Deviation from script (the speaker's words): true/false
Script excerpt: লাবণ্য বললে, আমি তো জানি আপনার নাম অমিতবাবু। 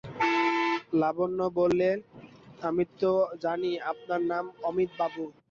false